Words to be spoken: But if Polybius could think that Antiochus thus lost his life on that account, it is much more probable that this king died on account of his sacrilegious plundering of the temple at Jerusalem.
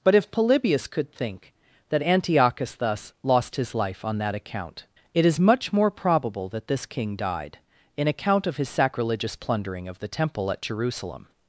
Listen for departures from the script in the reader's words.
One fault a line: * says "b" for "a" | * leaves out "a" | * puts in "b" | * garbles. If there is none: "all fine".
* says "in" for "on"